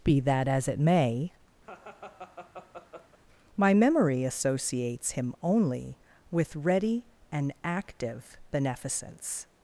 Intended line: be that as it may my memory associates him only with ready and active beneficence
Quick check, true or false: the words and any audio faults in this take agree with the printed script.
false